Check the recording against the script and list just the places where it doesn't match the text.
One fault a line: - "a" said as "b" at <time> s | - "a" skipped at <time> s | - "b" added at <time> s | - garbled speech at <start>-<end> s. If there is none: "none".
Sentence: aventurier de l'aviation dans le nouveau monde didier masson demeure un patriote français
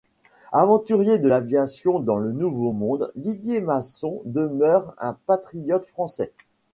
none